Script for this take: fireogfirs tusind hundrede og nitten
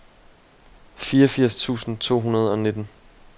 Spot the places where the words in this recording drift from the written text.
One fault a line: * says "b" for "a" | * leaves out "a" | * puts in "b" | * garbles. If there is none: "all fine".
* puts in "to"